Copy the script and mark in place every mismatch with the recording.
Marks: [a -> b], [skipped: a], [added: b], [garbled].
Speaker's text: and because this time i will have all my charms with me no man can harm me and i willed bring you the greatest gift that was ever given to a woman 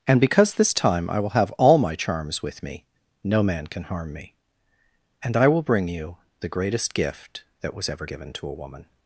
and because this time i will have all my charms with me no man can harm me and i [willed -> will] bring you the greatest gift that was ever given to a woman